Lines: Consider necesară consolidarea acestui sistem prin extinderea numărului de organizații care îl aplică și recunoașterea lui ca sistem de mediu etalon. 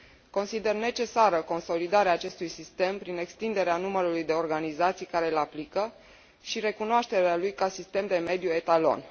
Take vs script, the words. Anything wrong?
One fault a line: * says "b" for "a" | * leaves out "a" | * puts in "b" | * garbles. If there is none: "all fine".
all fine